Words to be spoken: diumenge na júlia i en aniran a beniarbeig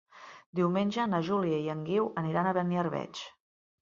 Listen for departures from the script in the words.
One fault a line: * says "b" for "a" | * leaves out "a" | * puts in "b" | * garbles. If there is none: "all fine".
* puts in "guiu"